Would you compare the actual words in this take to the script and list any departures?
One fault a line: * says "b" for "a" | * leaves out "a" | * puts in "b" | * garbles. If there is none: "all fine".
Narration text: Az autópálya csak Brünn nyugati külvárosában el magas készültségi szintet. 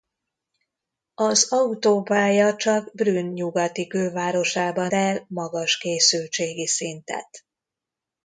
all fine